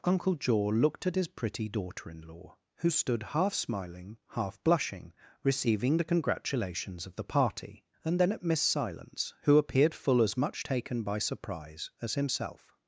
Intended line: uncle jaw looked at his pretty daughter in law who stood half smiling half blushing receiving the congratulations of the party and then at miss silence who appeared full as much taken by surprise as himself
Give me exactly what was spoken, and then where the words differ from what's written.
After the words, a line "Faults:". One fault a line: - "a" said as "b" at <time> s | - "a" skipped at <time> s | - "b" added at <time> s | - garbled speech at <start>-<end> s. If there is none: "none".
uncle jaw looked at his pretty daughter in law who stood half smiling half blushing receiving the congratulations of the party and then at miss silence who appeared full as much taken by surprise as himself
Faults:
none